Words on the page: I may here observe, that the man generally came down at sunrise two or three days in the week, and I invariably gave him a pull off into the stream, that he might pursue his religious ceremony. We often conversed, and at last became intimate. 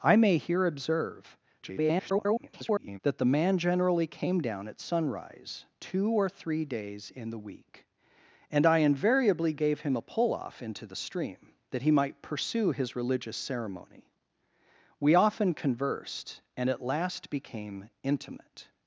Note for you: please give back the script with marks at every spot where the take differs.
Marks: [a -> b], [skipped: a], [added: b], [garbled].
I may here observe, [garbled] that the man generally came down at sunrise two or three days in the week, and I invariably gave him a pull off into the stream, that he might pursue his religious ceremony. We often conversed, and at last became intimate.